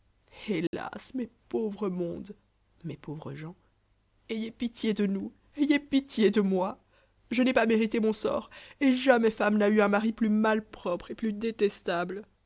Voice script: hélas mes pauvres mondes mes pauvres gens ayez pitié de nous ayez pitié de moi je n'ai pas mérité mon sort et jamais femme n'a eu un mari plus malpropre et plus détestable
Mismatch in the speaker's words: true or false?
false